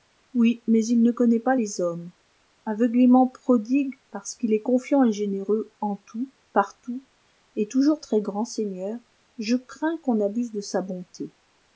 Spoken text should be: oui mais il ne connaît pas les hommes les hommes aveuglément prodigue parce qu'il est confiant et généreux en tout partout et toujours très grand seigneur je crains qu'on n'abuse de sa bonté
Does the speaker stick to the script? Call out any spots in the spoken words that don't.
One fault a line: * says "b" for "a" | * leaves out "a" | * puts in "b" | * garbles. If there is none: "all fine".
* leaves out "les hommes"